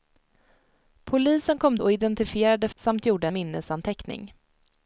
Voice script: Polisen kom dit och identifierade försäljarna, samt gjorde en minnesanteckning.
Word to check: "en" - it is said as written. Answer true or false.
false